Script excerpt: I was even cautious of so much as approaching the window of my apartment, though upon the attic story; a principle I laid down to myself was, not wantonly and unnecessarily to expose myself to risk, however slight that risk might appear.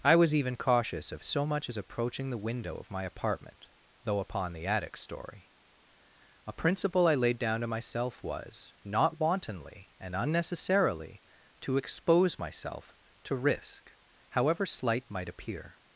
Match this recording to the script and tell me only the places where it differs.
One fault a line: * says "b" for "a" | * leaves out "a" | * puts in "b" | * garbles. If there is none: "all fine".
* leaves out "that risk"